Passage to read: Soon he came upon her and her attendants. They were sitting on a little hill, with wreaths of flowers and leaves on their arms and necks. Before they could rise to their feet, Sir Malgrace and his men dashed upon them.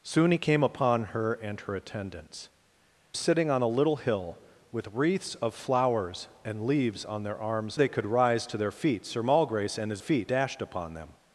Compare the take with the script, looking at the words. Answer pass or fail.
fail